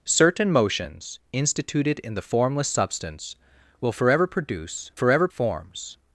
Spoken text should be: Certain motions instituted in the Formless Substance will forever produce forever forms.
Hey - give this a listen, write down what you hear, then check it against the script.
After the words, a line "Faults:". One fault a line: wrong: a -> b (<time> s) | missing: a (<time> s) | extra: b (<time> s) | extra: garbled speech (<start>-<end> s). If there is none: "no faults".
Certain motions instituted in the Formless Substance will forever produce forever forms.
Faults:
no faults